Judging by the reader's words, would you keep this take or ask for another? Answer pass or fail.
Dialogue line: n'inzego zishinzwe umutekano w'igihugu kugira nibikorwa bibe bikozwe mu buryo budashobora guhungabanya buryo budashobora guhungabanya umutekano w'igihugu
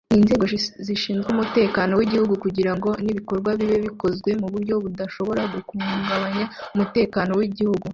fail